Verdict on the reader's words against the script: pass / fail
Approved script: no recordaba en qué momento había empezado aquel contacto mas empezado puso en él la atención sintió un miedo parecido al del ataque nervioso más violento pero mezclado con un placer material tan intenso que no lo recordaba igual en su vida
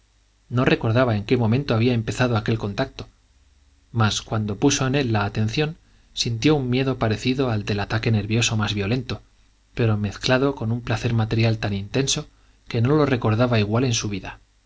fail